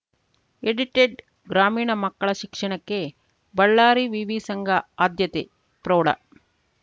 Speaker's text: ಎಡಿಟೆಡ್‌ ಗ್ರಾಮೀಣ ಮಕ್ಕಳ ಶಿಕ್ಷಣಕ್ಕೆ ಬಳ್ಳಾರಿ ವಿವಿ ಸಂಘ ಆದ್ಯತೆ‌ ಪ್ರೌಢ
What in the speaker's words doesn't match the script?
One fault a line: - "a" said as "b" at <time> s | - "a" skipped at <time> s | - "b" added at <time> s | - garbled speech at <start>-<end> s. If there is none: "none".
none